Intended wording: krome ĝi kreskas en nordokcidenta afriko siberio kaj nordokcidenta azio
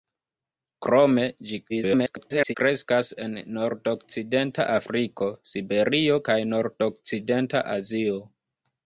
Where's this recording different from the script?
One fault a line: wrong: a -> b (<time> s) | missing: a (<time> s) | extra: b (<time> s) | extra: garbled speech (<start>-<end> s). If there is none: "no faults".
extra: garbled speech (1.7-2.5 s)